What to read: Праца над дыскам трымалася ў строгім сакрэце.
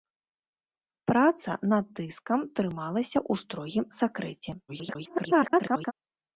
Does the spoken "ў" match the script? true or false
true